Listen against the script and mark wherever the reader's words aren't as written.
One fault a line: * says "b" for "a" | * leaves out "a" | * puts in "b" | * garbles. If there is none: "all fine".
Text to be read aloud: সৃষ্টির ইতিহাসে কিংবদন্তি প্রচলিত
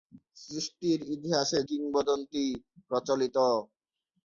all fine